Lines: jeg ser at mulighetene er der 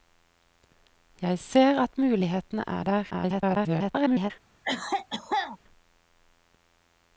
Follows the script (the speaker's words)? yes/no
no